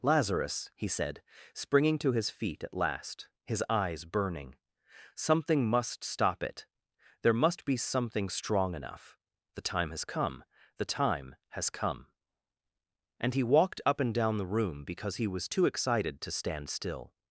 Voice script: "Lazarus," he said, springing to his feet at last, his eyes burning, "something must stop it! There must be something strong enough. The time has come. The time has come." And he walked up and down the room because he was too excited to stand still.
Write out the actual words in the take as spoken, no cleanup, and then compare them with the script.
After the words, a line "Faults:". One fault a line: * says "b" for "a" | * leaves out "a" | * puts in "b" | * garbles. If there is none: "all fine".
"Lazarus," he said, springing to his feet at last, his eyes burning, "something must stop it! There must be something strong enough. The time has come. The time has come." And he walked up and down the room because he was too excited to stand still.
Faults:
all fine